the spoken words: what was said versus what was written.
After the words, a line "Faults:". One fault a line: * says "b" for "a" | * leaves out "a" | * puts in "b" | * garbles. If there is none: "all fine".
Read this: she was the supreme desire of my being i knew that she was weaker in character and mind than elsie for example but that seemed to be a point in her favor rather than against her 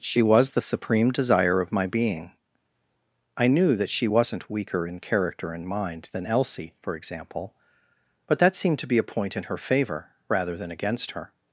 she was the supreme desire of my being i knew that she wasn't weaker in character and mind than elsie for example but that seemed to be a point in her favor rather than against her
Faults:
* says "wasn't" for "was"